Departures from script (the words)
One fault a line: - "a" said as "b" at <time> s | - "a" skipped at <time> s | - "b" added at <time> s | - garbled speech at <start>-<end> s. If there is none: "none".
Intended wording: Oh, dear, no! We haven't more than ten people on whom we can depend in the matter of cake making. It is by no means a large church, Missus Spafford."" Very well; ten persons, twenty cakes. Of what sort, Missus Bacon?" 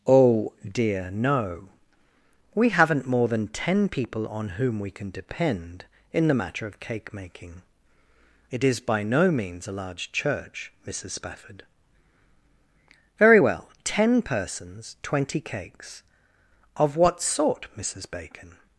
none